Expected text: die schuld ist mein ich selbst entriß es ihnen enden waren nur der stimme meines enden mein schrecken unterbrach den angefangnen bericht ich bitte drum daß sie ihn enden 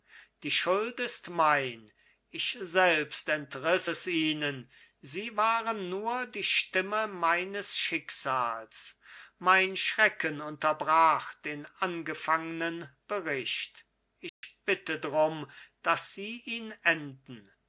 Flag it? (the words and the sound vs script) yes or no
yes